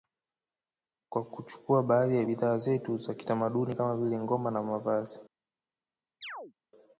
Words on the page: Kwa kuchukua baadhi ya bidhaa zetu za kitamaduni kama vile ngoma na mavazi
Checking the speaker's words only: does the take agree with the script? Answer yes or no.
yes